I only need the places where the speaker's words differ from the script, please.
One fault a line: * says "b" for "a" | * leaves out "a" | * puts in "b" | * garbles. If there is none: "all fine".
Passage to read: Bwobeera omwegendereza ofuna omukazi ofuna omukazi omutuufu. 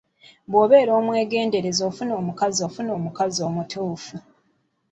all fine